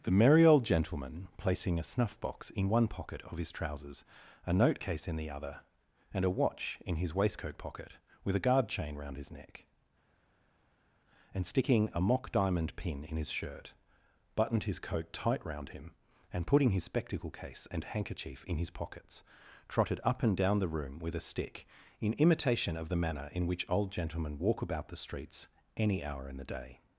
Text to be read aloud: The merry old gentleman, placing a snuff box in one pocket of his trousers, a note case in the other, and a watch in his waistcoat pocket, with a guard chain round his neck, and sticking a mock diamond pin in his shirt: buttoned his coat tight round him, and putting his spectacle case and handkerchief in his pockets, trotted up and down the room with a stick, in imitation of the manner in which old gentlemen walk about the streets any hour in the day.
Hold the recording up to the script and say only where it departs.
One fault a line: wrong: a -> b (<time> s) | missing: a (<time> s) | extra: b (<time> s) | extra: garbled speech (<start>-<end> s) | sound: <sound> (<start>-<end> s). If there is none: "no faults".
no faults